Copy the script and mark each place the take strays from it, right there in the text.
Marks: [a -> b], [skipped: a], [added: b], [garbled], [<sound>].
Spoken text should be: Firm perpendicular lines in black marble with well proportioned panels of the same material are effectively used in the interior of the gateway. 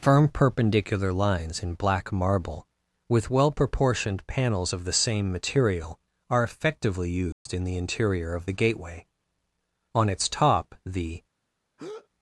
Firm perpendicular lines in black marble with well proportioned panels of the same material are effectively used [dropout] in the interior of the gateway. [added: On its top the] [breath]